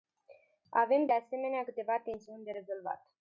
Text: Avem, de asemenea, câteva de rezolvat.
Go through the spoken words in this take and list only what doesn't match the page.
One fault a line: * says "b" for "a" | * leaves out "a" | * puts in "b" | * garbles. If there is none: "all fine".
* puts in "tensiuni"